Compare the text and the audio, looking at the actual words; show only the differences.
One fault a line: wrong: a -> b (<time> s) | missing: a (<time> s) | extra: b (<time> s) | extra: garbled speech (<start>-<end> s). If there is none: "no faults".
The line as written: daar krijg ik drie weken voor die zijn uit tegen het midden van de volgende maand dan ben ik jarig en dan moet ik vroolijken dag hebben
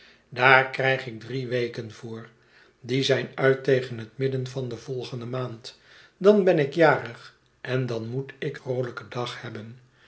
no faults